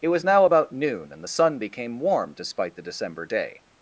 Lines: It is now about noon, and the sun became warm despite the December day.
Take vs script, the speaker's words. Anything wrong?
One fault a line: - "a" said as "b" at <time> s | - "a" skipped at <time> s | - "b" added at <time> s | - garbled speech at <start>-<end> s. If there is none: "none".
- "is" said as "was" at 0.1 s